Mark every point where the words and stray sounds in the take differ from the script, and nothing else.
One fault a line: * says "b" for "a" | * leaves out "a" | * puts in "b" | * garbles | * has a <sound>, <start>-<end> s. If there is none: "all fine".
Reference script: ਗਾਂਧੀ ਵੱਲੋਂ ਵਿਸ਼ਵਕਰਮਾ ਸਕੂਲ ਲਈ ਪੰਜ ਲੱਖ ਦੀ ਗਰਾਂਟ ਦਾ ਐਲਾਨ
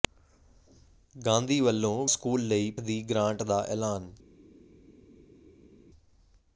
* leaves out "ਵਿਸ਼ਵਕਰਮਾ"
* leaves out "ਪੰਜ ਲੱਖ"